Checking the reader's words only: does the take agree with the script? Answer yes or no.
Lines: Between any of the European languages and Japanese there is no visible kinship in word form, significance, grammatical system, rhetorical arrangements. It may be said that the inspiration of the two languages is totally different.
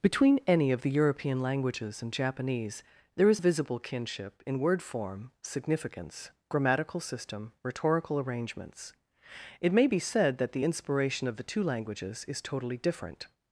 no